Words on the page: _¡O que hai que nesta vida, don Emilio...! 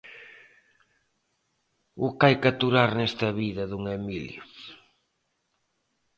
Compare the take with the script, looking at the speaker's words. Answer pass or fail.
fail